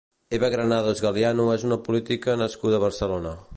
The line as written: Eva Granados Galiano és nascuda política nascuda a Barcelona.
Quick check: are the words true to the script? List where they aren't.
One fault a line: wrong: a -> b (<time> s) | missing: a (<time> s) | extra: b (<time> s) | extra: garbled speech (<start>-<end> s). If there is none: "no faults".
wrong: nascuda -> una (1.7 s)